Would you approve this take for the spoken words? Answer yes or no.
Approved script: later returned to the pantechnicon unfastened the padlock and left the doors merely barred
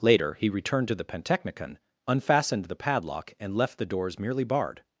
no